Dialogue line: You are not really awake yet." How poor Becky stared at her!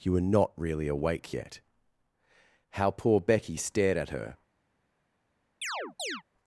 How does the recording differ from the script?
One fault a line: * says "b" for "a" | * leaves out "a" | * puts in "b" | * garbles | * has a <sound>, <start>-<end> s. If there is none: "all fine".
* says "were" for "are"
* has a chirp, 5.6-6.2 s